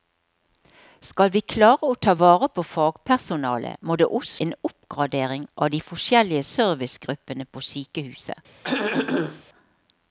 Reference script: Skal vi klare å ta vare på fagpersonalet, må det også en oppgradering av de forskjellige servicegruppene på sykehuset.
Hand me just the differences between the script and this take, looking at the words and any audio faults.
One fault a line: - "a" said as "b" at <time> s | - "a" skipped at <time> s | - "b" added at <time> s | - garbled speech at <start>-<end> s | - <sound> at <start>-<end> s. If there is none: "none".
- throat clearing at 8.6-9.4 s